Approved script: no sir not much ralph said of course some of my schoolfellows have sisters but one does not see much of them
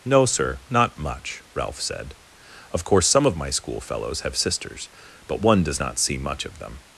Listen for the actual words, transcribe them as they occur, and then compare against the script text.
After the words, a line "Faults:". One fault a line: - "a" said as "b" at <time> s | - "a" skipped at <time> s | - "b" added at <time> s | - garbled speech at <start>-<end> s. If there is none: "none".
no sir not much ralph said of course some of my schoolfellows have sisters but one does not see much of them
Faults:
none